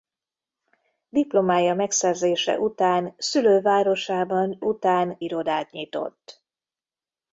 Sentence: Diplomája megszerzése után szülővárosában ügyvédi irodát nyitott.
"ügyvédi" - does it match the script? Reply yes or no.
no